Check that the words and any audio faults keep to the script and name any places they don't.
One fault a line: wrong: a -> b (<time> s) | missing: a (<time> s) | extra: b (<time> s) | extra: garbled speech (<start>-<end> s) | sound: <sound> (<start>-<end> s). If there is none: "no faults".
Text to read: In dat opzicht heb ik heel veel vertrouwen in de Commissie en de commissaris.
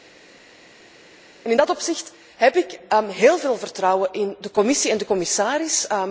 no faults